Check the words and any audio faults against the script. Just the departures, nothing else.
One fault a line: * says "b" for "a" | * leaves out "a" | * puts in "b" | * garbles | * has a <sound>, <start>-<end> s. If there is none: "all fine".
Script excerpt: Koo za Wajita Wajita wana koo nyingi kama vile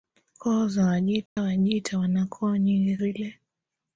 * has a dropout, 1.3-1.4 s
* leaves out "kama"